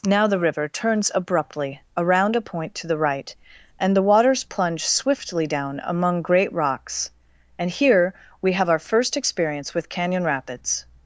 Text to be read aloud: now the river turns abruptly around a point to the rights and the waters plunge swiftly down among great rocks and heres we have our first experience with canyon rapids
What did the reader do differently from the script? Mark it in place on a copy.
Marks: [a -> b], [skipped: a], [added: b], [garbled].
now the river turns abruptly around a point to the [rights -> right] and the waters plunge swiftly down among great rocks and [heres -> here] we have our first experience with canyon rapids